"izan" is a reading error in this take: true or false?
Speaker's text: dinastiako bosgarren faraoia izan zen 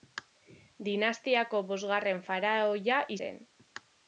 true